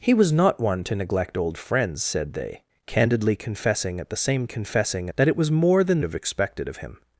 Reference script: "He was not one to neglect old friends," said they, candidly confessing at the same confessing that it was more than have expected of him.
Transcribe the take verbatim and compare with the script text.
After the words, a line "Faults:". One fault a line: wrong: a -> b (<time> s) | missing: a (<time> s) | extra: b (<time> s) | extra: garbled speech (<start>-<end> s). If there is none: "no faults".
"He was not one to neglect old friends," said they, candidly confessing at the same confessing that it was more than have expected of him.
Faults:
no faults